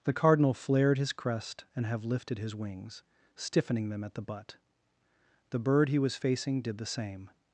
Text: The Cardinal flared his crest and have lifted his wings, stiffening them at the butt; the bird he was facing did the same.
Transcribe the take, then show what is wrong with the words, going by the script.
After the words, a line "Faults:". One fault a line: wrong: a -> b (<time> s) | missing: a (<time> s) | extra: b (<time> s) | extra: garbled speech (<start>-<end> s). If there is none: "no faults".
The Cardinal flared his crest and have lifted his wings, stiffening them at the butt; the bird he was facing did the same.
Faults:
no faults